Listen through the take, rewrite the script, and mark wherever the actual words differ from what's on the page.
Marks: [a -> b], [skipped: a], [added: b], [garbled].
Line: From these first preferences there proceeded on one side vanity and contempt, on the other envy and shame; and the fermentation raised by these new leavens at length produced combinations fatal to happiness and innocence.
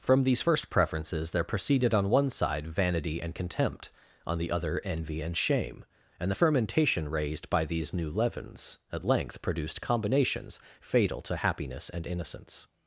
From these first preferences there proceeded on one side vanity and contempt, on the other envy and shame; and the fermentation raised by these new leavens at length produced combinations fatal to happiness and innocence.